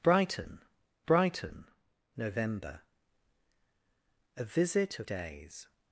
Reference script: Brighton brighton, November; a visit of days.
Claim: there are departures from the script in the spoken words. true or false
false